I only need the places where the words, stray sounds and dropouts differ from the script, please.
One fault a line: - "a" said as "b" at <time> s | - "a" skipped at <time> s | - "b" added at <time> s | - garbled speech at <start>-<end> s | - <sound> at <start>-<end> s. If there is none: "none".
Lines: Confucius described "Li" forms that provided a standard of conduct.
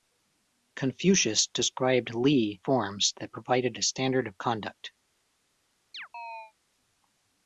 - chirp at 5.9-6.5 s